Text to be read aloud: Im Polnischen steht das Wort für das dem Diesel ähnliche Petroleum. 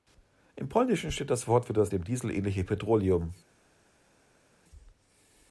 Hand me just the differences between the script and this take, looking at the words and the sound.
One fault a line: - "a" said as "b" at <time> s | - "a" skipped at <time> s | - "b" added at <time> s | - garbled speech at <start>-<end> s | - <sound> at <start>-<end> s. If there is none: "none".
none